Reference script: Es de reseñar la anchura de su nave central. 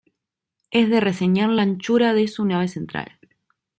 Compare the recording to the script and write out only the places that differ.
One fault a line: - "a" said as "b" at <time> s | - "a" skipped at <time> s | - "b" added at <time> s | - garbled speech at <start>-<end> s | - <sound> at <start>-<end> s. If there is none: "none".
none